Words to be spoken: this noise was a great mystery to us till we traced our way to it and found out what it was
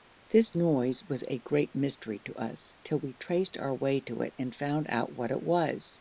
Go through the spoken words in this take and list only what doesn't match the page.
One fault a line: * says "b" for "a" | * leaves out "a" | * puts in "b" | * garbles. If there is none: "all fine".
all fine